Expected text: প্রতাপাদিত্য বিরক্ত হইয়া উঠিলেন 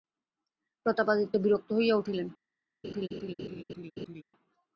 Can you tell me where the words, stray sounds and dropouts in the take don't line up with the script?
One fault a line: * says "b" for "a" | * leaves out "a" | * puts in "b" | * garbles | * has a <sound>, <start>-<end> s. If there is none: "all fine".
* has a laugh, 2.8-4.2 s